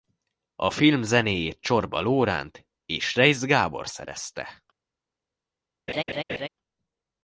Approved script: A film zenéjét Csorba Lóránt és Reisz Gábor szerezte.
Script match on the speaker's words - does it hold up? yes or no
yes